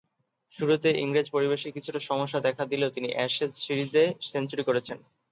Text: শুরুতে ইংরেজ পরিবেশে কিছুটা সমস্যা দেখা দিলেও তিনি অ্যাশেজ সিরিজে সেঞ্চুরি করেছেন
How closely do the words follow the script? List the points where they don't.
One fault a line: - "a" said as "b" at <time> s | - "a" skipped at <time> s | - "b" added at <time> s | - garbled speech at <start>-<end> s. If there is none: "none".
none